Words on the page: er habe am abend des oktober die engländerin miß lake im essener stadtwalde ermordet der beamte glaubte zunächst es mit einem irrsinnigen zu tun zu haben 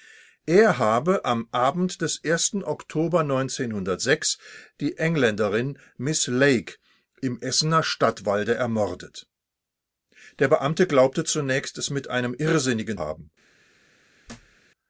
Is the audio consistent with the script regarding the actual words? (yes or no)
no